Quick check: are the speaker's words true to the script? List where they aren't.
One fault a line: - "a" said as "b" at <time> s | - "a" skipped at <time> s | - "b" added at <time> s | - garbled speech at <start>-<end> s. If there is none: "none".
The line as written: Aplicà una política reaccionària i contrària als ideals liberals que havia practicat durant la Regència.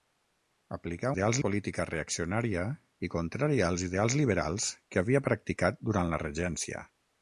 - "una" said as "ideals" at 1.1 s